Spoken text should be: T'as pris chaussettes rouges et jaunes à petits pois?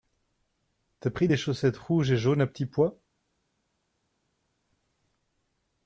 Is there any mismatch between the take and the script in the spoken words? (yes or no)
yes